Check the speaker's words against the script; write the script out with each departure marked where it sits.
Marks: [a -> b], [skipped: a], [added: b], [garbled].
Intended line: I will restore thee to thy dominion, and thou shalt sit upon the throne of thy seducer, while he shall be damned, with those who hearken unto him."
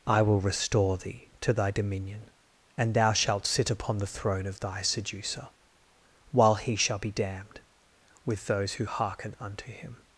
I will restore thee to thy dominion, and thou shalt sit upon the throne of thy seducer, while he shall be damned, with those who hearken unto him."